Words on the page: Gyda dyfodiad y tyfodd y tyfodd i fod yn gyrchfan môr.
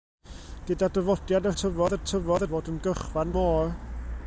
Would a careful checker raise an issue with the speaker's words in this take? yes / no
no